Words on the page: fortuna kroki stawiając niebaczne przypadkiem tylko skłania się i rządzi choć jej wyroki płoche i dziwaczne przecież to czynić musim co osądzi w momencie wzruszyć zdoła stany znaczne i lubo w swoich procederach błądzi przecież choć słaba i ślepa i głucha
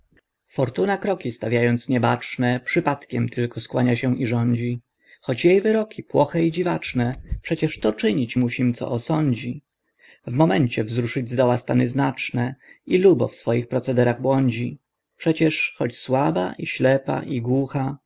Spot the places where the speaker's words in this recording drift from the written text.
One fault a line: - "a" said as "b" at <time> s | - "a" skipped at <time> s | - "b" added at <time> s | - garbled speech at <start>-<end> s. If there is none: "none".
none